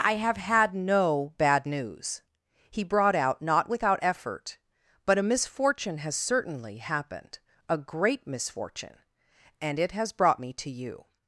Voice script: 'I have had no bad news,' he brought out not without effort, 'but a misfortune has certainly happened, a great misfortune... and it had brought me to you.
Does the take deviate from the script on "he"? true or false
false